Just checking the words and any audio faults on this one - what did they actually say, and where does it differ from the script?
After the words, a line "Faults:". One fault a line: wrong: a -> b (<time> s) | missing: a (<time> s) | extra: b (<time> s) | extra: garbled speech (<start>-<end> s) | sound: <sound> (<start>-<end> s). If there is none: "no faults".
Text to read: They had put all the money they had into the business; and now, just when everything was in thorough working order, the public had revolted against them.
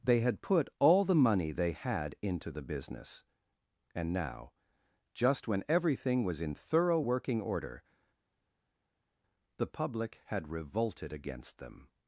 They had put all the money they had into the business; and now, just when everything was in thorough working order, the public had revolted against them.
Faults:
no faults